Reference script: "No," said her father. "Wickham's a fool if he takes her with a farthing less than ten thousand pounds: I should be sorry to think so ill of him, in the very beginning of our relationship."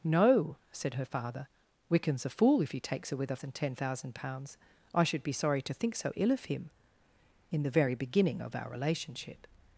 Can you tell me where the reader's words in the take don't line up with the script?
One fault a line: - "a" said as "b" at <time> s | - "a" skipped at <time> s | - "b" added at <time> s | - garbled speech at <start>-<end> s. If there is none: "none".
- "farthing less" skipped at 3.4 s